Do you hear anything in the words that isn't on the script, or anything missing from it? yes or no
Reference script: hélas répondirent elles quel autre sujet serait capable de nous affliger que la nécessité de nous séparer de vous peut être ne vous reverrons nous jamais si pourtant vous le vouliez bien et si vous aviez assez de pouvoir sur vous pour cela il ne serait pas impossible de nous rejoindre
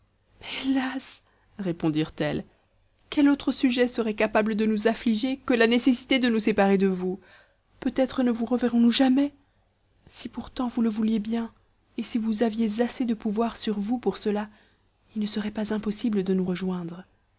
no